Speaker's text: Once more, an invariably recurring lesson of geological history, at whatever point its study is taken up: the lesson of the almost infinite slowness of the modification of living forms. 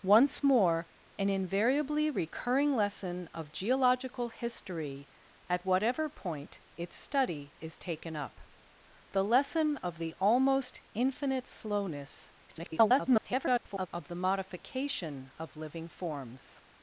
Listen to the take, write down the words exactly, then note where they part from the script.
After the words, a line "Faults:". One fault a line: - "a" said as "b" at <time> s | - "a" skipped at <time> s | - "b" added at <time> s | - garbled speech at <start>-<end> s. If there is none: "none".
Once more, an invariably recurring lesson of geological history, at whatever point its study is taken up: the lesson of the almost infinite slowness [garbled] of the modification of living forms.
Faults:
- garbled speech at 12.5-13.9 s